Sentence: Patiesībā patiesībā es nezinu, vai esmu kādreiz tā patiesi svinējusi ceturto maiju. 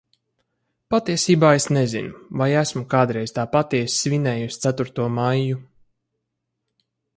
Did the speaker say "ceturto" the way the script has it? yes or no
yes